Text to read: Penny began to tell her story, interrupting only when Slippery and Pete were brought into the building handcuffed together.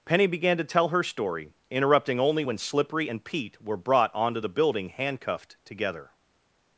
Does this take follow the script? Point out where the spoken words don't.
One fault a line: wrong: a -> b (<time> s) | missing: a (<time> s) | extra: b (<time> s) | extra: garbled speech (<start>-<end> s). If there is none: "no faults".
wrong: into -> onto (4.1 s)